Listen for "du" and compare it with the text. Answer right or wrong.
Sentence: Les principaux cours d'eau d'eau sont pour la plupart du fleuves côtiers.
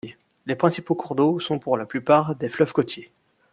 wrong